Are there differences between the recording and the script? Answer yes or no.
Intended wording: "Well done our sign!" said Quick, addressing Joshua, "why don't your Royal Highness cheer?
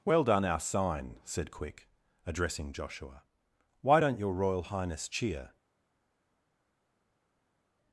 no